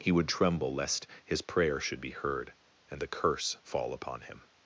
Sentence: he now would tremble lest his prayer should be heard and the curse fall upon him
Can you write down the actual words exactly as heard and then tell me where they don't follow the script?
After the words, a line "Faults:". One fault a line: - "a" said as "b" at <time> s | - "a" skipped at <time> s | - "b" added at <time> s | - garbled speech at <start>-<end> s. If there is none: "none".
he would tremble lest his prayer should be heard and the curse fall upon him
Faults:
- "now" skipped at 0.1 s